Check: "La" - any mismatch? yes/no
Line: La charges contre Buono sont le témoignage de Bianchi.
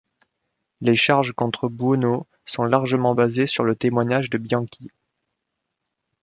yes